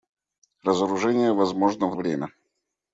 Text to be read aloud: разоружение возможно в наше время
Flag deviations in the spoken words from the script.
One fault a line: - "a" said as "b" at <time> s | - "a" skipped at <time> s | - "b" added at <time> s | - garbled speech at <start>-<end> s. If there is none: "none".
- "наше" skipped at 1.9 s